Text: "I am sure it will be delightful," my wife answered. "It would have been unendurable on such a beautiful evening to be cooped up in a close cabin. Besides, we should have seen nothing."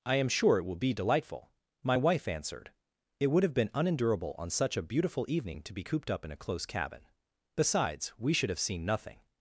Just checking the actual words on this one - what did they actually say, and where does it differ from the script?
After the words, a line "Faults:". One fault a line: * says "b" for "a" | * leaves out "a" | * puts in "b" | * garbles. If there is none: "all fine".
"I am sure it will be delightful," my wife answered. "It would have been unendurable on such a beautiful evening to be cooped up in a close cabin. Besides, we should have seen nothing."
Faults:
all fine